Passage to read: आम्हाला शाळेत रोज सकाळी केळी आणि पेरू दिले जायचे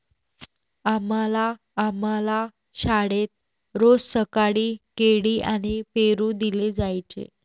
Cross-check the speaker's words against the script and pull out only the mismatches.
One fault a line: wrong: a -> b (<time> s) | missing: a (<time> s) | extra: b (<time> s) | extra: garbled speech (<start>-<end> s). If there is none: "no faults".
extra: आम्हाला (1.8 s)